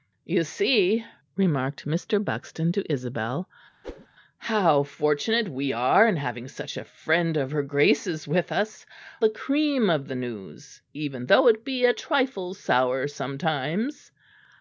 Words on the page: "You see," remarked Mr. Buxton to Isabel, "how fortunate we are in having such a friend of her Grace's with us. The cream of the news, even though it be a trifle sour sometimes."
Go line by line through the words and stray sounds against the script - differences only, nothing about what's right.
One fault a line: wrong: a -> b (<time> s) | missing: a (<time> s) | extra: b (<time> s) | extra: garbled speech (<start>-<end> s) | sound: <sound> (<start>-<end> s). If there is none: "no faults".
sound: whoosh (3.8-4.1 s)